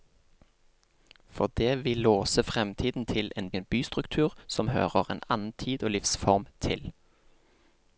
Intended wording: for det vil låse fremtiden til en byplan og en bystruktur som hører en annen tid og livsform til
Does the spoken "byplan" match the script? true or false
false